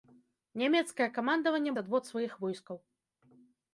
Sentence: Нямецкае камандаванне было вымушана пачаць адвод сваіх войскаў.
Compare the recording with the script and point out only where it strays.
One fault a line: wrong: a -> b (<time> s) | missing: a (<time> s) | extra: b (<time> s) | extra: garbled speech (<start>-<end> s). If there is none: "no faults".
missing: было вымушана пачаць (1.7 s)